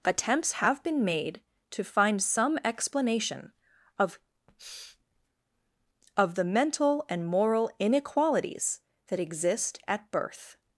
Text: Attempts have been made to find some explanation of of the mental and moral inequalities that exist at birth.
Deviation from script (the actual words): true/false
false